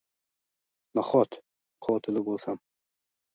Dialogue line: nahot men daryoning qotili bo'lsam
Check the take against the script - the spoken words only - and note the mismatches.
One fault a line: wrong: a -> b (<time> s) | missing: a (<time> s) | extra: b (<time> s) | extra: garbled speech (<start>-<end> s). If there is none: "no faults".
missing: men daryoning (1.4 s)